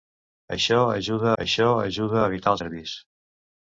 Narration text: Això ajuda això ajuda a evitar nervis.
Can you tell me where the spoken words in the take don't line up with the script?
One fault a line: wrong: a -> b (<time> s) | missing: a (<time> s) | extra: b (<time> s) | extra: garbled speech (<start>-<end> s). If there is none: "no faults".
no faults